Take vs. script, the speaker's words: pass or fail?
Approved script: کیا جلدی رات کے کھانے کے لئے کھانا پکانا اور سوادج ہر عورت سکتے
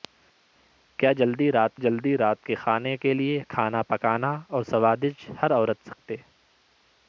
fail